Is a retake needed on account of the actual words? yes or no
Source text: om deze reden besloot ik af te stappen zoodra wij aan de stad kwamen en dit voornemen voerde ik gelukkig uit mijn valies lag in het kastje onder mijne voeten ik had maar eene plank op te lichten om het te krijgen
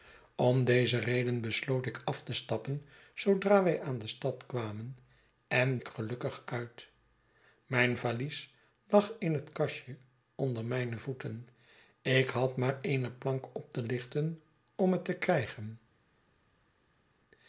yes